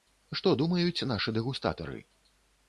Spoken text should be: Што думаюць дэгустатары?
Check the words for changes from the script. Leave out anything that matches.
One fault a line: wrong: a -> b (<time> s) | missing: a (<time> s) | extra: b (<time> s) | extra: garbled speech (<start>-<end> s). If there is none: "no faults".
extra: нашы (1.1 s)